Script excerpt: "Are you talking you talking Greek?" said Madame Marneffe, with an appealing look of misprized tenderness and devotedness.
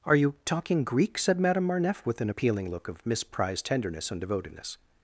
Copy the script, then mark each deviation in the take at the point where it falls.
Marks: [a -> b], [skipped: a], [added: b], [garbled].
"Are you talking [skipped: you talking] Greek?" said Madame Marneffe, with an appealing look of misprized tenderness and devotedness.